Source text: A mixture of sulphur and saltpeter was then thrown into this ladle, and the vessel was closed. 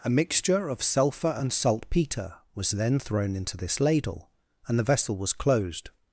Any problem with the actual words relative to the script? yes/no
no